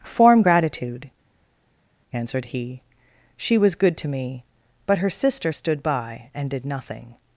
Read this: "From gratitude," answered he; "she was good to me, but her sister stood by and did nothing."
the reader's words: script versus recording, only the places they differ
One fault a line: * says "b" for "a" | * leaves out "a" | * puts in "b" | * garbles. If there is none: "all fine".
* says "Form" for "From"